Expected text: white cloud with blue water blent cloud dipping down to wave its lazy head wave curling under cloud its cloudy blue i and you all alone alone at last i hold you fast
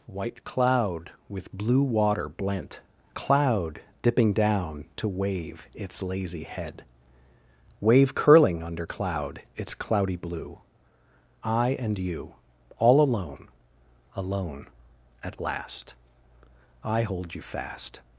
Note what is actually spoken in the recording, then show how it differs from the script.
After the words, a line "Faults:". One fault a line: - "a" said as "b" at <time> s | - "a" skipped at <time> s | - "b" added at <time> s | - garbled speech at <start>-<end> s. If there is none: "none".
white cloud with blue water blent cloud dipping down to wave its lazy head wave curling under cloud its cloudy blue i and you all alone alone at last i hold you fast
Faults:
none